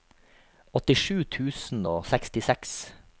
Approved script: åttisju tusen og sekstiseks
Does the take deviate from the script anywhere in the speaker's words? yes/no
no